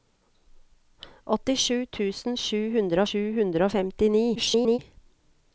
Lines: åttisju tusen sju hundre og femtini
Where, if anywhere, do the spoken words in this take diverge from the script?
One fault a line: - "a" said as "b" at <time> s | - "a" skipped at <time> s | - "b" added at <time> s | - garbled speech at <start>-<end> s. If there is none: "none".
- "sju hundre" added at 3.1 s
- garbled speech at 4.4-4.8 s